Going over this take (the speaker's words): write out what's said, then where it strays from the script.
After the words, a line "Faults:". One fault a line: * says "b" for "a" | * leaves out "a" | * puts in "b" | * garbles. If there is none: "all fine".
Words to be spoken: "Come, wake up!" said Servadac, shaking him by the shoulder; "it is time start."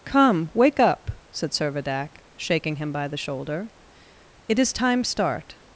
"Come, wake up!" said Servadac, shaking him by the shoulder; "it is time start."
Faults:
all fine